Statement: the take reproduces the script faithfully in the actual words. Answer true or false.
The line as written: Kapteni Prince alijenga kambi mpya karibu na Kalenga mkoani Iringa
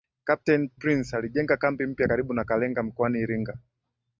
true